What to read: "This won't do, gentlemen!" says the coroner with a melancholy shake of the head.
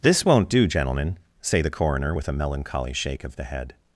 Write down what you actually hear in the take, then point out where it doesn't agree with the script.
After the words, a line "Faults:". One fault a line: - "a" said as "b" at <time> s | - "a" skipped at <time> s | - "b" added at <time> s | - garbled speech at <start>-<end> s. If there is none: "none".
"This won't do, gentlemen!" say the coroner with a melancholy shake of the head.
Faults:
- "says" said as "say" at 1.4 s